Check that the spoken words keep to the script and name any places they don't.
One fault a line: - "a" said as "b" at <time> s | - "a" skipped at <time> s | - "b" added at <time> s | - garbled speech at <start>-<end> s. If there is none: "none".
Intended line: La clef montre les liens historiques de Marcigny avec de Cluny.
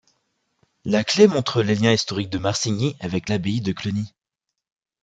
- "l'abbaye" added at 3.3 s